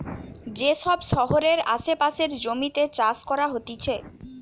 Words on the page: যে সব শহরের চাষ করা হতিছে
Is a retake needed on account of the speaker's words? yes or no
yes